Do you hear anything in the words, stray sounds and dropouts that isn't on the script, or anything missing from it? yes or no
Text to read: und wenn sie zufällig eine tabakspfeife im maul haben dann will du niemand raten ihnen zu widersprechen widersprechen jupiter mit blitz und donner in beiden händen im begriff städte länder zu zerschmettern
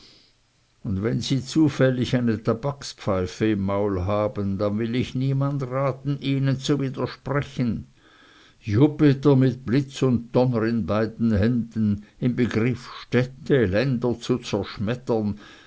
yes